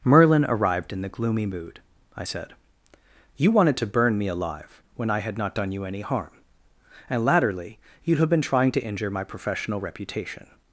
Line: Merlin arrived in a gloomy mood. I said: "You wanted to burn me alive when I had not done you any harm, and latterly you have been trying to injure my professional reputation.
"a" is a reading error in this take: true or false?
true